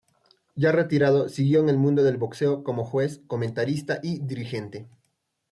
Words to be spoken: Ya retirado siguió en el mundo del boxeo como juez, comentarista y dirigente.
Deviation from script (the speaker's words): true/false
false